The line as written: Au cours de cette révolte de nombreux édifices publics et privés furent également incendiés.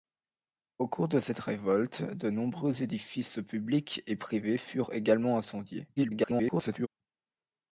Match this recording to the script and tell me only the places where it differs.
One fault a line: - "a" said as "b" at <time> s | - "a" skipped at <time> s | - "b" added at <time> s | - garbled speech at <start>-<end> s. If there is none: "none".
- garbled speech at 6.0-6.9 s